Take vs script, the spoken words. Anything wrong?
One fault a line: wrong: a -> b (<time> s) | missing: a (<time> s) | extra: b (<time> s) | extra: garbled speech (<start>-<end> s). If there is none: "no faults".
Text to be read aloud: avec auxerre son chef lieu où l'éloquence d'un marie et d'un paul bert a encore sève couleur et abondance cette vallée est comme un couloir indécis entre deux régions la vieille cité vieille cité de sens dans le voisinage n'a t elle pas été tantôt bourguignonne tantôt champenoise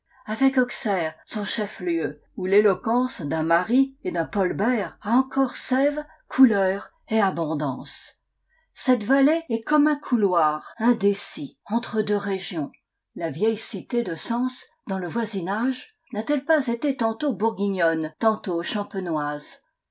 missing: vieille cité (14.0 s)